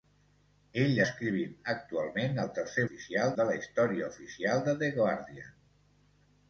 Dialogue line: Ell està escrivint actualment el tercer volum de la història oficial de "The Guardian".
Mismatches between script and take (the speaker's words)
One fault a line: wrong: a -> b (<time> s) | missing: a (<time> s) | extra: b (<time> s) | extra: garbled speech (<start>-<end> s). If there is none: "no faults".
missing: està (1.0 s)
wrong: volum -> oficial (2.8 s)